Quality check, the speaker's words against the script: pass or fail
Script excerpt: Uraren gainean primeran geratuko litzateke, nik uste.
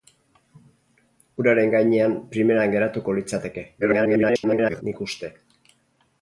fail